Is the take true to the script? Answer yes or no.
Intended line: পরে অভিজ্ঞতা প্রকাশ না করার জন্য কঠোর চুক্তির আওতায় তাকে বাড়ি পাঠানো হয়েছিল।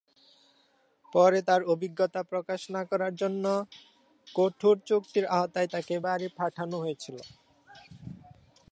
no